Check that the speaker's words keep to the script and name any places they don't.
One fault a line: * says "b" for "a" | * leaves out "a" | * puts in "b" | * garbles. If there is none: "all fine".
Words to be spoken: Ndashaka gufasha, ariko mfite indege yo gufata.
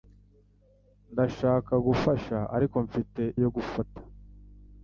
* leaves out "indege"